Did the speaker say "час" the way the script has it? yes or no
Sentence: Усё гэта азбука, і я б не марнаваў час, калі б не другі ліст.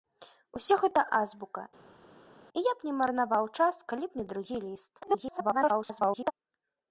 yes